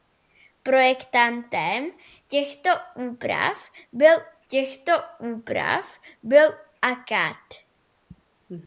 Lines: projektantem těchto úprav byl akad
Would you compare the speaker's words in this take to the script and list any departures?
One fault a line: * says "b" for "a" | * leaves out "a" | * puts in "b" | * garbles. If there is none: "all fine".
* puts in "těchto úprav byl"